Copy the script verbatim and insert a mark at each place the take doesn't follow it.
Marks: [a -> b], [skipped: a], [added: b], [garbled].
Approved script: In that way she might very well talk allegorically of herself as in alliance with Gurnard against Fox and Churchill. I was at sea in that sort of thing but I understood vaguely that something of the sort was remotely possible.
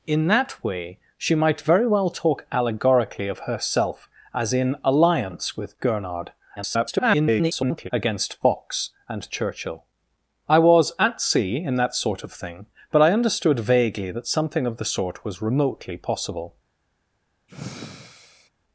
In that way she might very well talk allegorically of herself as in alliance with Gurnard [garbled] against Fox and Churchill. I was at sea in that sort of thing but I understood vaguely that something of the sort was remotely possible.